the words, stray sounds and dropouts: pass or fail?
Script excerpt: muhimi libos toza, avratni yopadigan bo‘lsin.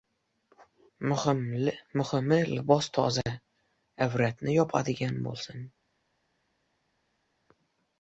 pass